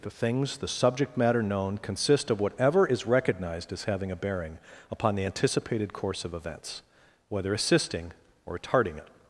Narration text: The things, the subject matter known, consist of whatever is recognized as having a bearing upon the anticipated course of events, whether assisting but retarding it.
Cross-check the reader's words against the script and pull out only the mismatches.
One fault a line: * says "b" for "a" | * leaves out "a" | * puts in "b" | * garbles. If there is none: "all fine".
* says "or" for "but"